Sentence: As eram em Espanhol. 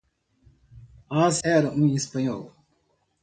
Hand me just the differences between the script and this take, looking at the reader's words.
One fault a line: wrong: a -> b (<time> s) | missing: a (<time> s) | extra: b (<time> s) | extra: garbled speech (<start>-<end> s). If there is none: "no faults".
no faults